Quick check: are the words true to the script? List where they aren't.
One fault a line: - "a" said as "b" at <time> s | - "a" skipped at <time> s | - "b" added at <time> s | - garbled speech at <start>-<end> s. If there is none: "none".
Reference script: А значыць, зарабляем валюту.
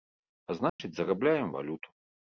none